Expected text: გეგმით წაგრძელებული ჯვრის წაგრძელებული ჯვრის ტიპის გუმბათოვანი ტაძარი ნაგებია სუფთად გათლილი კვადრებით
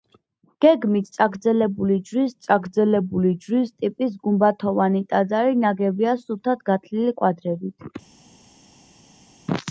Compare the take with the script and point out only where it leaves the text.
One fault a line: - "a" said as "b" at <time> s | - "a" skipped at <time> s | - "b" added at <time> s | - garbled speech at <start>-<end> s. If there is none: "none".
none